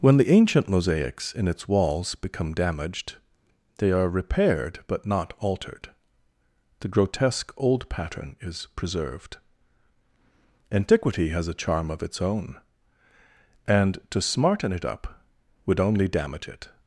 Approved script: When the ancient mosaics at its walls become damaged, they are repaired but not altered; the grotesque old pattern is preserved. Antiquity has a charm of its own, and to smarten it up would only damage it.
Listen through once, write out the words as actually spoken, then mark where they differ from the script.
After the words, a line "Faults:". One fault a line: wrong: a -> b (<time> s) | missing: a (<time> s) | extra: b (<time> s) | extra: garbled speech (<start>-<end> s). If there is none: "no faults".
When the ancient mosaics in its walls become damaged, they are repaired but not altered; the grotesque old pattern is preserved. Antiquity has a charm of its own, and to smarten it up would only damage it.
Faults:
wrong: at -> in (1.3 s)